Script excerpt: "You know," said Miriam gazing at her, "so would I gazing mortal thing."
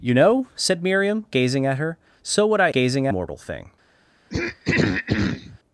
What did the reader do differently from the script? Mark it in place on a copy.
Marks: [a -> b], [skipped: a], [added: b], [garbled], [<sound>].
"You know," said Miriam gazing at her, "so would I gazing mortal thing." [throat clearing]